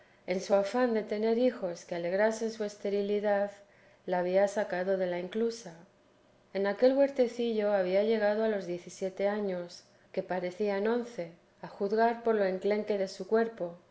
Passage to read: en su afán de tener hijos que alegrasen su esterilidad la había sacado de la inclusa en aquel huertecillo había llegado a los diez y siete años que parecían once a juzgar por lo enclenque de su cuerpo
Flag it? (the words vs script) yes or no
no